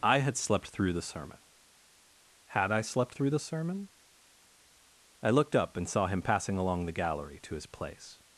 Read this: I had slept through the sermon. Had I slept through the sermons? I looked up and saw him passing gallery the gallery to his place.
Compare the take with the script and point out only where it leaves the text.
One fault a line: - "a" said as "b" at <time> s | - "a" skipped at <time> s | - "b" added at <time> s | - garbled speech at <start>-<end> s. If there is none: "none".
- "sermons" said as "sermon" at 3.4 s
- "gallery" said as "along" at 6.6 s